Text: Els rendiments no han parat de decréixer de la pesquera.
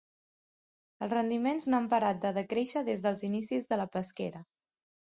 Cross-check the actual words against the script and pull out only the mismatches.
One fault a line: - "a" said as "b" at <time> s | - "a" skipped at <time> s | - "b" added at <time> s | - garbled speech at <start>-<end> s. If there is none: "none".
- "des dels inicis" added at 2.9 s